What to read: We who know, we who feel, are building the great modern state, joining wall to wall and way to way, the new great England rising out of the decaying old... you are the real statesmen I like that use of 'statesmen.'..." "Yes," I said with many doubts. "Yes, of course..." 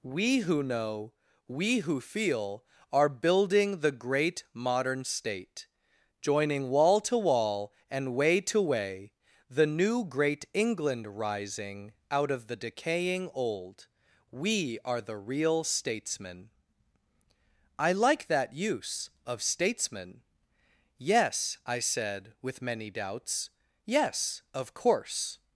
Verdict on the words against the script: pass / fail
fail